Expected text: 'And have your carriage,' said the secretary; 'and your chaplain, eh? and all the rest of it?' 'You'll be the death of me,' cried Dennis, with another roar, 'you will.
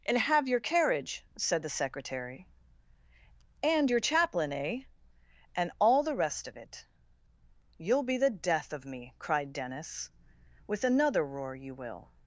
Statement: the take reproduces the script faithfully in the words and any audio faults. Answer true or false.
true